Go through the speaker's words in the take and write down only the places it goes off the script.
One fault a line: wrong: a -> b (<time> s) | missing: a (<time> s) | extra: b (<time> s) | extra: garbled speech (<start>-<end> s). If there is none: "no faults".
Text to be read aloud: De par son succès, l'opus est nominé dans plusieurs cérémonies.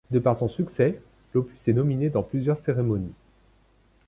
no faults